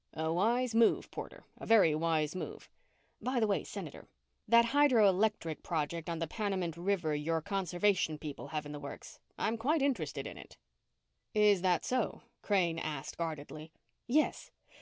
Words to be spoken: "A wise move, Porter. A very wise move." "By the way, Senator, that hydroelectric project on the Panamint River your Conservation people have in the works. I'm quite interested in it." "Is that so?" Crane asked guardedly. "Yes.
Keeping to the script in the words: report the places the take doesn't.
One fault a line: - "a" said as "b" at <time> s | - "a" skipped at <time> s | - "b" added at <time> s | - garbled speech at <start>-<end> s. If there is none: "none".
none